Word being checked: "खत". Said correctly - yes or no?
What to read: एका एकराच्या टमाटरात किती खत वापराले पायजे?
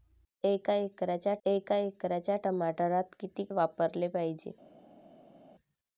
no